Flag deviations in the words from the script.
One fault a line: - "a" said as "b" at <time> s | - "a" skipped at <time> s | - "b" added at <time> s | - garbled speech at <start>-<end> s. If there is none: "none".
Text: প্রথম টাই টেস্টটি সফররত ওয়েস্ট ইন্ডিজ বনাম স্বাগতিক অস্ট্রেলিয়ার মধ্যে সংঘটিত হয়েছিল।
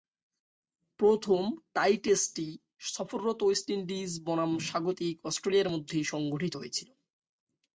none